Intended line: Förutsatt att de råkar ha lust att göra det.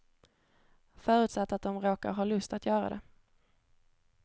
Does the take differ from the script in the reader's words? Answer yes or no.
no